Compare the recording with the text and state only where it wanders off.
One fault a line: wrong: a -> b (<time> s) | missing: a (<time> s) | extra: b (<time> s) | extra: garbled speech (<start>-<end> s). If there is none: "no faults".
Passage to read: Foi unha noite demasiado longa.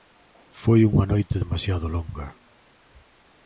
no faults